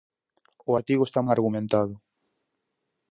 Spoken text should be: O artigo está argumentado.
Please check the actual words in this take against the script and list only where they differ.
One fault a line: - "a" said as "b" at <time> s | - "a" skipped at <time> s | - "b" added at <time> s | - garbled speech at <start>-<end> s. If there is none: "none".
none